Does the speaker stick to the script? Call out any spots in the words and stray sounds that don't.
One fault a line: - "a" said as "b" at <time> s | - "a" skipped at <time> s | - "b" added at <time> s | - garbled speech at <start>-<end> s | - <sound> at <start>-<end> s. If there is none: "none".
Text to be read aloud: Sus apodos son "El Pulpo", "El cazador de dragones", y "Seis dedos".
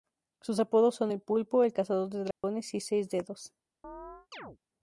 - dropout at 2.3-2.4 s
- chirp at 3.8-4.6 s